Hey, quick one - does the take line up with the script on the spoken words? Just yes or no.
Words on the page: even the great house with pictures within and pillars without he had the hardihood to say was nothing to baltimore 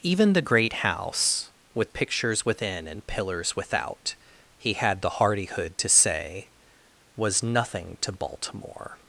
yes